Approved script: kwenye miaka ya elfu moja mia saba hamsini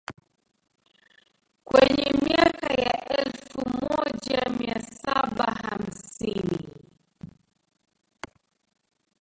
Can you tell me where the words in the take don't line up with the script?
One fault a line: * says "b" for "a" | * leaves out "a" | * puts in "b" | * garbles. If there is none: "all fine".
all fine